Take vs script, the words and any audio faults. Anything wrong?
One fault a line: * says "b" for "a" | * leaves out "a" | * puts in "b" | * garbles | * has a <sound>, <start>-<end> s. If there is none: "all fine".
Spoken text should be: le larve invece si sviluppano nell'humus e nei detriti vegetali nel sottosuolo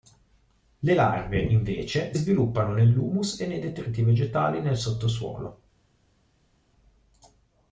* leaves out "si"